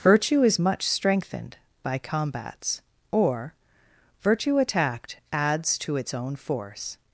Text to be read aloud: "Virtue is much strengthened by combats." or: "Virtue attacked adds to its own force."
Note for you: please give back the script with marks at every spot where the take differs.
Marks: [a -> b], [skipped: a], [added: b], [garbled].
"Virtue is much strengthened by combats." or: "Virtue attacked adds to its own force."